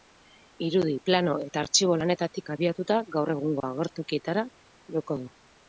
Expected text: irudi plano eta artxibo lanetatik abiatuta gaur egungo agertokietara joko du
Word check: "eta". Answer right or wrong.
right